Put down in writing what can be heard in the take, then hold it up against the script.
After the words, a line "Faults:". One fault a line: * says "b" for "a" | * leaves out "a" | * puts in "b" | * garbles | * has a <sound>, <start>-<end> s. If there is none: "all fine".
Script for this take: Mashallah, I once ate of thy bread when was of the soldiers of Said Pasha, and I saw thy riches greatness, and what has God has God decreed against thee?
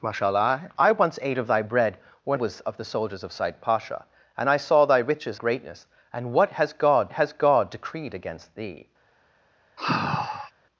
Mashallah, I once ate of thy bread when was of the soldiers of Said Pasha, and I saw thy riches greatness, and what has God has God decreed against thee?
Faults:
* has a sigh, 9.8-10.5 s